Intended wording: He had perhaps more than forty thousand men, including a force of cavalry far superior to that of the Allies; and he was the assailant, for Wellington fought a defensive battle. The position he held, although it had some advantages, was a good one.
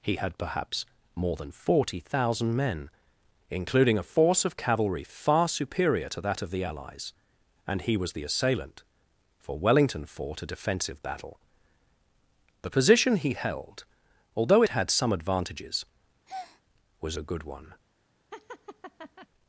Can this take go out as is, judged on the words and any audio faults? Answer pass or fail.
fail